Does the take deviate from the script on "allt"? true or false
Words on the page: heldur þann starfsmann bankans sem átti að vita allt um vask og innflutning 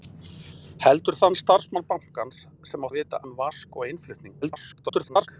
true